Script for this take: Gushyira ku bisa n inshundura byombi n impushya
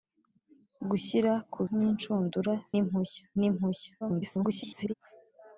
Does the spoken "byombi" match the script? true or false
false